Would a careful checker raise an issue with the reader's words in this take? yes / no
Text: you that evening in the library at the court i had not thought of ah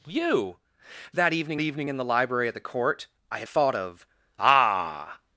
yes